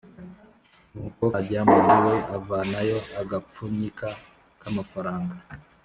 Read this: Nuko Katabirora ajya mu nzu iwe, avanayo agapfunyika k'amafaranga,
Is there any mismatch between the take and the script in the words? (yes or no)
yes